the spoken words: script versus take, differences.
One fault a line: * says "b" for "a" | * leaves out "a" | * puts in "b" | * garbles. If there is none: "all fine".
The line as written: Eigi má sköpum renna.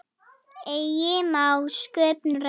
all fine